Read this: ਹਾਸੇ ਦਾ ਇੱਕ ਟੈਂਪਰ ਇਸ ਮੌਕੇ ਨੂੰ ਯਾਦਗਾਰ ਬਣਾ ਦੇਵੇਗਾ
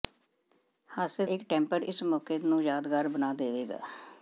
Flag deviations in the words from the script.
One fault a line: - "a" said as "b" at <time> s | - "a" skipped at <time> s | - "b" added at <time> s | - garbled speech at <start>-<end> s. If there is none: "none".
- "ਦਾ" skipped at 1.2 s